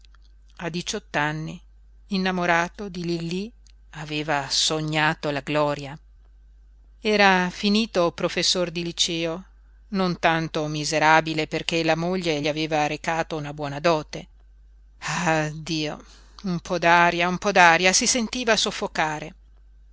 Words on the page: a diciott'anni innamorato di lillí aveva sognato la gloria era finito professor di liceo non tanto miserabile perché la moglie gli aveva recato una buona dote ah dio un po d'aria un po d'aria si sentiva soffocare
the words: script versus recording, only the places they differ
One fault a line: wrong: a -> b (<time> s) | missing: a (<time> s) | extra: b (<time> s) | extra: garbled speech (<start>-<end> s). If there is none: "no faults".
no faults